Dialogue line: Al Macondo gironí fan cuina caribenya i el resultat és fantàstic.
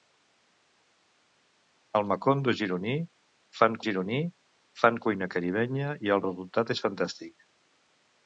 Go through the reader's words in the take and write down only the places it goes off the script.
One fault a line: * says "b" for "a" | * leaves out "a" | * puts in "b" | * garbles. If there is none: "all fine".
* puts in "gironí fan"